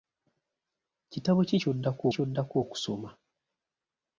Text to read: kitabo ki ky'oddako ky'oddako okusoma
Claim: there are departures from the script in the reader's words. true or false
false